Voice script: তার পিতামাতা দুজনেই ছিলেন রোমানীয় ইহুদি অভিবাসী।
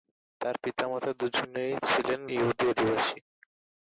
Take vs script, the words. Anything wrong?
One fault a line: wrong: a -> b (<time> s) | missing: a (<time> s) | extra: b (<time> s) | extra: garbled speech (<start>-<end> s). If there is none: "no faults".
missing: রোমানীয় (2.2 s)